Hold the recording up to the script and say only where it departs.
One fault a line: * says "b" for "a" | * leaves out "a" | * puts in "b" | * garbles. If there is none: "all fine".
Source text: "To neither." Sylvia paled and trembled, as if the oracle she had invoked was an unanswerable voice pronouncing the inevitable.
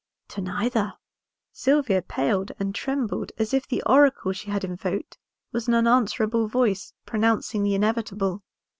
all fine